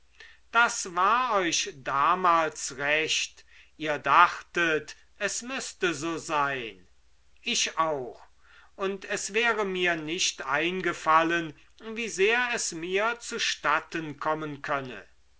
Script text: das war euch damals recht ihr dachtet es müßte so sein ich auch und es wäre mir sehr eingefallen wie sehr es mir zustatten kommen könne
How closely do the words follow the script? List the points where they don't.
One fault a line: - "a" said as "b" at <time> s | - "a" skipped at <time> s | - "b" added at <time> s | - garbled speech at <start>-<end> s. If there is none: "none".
- "sehr" said as "nicht" at 10.0 s